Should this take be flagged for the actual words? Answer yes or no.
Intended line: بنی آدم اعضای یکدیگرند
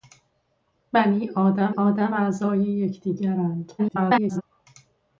yes